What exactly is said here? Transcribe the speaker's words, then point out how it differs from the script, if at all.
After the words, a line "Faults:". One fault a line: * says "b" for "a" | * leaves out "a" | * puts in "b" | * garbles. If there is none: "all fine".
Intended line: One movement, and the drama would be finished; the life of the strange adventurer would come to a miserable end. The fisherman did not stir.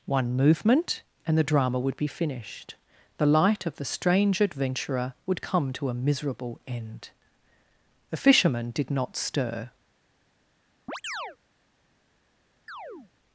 One movement, and the drama would be finished; the light of the strange adventurer would come to a miserable end. The fisherman did not stir.
Faults:
* says "light" for "life"